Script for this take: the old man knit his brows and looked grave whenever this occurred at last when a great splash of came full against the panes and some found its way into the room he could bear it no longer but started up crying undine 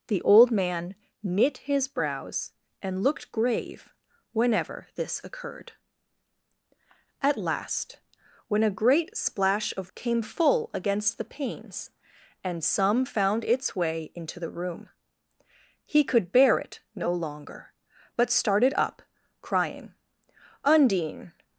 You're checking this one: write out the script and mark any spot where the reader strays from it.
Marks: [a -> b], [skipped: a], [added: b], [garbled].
the old man knit his brows and looked grave whenever this occurred at last when a great splash of came full against the panes and some found its way into the room he could bear it no longer but started up crying undine